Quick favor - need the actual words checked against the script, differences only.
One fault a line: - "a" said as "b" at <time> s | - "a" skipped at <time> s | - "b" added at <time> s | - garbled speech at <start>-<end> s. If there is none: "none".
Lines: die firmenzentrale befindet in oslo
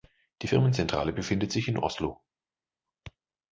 - "sich" added at 1.5 s